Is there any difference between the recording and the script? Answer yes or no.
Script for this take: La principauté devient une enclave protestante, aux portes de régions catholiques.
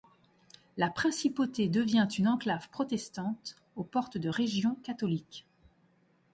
no